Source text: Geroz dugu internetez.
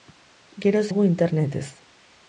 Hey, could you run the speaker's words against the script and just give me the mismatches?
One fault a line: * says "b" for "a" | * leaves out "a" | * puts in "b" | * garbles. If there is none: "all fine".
all fine